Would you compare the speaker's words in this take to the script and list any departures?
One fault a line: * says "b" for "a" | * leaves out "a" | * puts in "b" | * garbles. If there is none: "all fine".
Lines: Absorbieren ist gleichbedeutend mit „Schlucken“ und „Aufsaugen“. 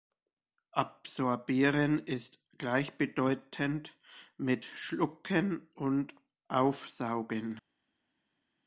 all fine